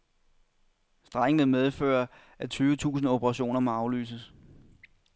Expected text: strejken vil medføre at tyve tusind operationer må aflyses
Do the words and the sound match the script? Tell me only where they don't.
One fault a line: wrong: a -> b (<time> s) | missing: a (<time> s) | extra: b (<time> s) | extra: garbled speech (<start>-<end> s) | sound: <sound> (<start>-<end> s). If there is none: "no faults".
no faults